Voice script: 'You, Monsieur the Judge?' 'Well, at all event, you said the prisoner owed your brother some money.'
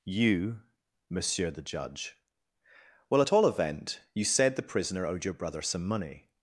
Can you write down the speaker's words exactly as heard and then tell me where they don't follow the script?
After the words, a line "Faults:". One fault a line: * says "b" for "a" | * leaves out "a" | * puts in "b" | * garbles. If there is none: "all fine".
'You, Monsieur the Judge?' 'Well, at all event, you said the prisoner owed your brother some money.'
Faults:
all fine